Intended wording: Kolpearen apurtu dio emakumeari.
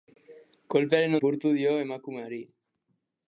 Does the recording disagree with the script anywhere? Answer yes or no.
no